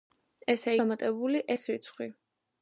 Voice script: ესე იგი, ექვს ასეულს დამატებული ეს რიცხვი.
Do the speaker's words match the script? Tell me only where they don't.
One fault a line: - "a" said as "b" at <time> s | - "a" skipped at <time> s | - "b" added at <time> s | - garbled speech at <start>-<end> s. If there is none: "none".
- "იგი ექვს ასეულს" skipped at 0.7 s